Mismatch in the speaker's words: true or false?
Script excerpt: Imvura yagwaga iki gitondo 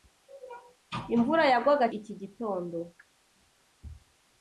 false